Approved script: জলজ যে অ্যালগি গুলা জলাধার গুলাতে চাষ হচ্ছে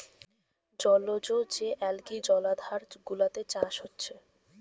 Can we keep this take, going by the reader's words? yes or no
no